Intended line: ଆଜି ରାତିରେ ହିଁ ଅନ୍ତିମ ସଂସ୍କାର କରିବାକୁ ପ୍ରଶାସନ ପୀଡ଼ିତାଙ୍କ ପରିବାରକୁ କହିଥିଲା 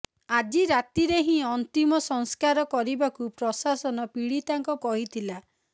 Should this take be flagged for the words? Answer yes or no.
yes